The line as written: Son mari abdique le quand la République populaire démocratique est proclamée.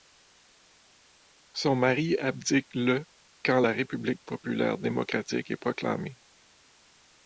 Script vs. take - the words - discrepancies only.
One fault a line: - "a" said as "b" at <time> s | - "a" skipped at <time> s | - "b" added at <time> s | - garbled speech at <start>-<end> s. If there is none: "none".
none